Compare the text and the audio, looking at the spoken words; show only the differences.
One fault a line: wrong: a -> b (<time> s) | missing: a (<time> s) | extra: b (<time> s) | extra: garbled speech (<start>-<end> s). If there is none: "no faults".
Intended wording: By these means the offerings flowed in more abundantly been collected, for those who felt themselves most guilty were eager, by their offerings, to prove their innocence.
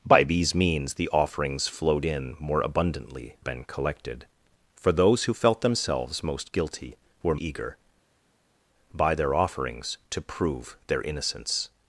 no faults